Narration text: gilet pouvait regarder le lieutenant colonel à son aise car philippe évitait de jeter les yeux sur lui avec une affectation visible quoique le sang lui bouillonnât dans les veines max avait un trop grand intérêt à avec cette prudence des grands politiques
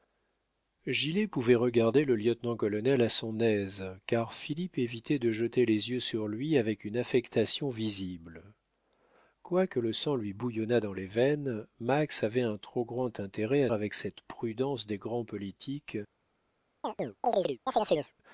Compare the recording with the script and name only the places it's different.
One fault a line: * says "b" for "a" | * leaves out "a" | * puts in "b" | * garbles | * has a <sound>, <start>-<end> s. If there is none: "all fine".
* has a chirp, 16.8-18.1 s